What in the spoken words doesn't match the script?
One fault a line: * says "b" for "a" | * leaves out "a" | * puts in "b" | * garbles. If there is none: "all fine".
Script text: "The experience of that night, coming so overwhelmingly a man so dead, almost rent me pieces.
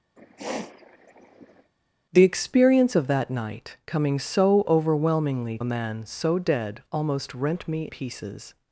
all fine